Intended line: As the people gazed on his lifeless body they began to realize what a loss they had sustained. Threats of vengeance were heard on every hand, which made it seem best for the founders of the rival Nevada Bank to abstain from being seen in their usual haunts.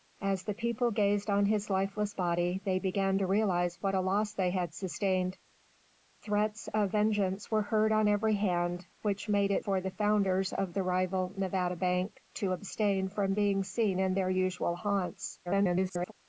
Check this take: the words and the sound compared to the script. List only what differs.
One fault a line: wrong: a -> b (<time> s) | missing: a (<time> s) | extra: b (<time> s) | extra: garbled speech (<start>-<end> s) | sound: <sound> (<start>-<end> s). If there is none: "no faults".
missing: seem best (9.7 s)
extra: garbled speech (15.5-16.1 s)